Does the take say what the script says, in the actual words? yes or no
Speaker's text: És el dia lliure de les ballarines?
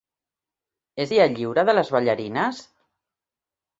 no